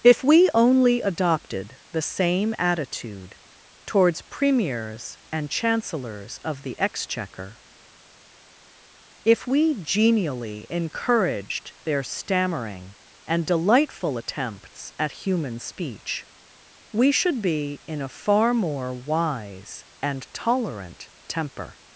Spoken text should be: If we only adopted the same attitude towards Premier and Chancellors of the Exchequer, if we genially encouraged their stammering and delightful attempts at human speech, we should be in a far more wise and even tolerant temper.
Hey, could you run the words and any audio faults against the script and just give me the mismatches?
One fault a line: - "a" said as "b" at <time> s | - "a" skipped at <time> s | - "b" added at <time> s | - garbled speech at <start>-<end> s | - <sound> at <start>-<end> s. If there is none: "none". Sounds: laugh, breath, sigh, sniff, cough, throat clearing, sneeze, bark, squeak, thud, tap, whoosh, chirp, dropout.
- "Premier" said as "Premiers" at 4.2 s
- "even" skipped at 20.3 s